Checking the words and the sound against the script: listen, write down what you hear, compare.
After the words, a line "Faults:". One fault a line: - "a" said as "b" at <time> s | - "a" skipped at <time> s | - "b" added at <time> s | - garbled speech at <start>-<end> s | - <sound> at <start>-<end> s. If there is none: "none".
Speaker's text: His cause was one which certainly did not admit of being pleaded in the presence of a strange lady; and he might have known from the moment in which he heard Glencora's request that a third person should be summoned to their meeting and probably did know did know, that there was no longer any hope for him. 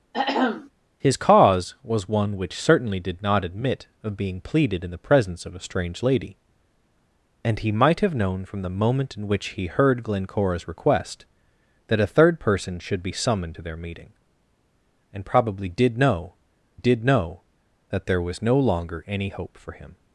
His cause was one which certainly did not admit of being pleaded in the presence of a strange lady; and he might have known from the moment in which he heard Glencora's request that a third person should be summoned to their meeting and probably did know did know, that there was no longer any hope for him.
Faults:
- throat clearing at 0.1-0.7 s